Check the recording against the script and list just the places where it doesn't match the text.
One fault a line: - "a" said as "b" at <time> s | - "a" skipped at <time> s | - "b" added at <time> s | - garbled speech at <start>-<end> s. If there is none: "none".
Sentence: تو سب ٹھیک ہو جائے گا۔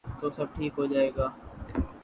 none